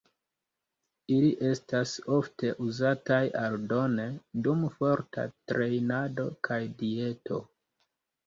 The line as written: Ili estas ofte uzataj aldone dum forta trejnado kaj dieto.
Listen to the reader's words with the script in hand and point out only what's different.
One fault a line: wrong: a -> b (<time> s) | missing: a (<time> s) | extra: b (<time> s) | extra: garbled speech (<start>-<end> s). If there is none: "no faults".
no faults